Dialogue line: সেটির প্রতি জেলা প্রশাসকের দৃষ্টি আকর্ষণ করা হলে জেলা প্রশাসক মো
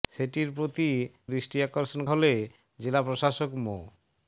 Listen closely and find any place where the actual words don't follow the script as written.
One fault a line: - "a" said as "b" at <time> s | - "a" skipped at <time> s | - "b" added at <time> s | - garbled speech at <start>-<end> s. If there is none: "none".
- "জেলা প্রশাসকের" skipped at 0.9 s
- "করা" skipped at 2.0 s